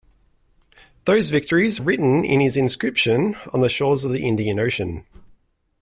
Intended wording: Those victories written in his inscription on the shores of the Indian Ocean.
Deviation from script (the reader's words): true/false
false